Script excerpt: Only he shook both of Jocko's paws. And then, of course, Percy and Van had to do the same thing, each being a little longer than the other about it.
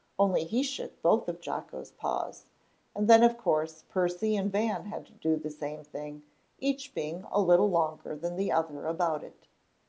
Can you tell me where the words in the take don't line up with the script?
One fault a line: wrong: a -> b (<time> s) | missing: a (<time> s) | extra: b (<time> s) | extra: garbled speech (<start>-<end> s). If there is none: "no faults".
no faults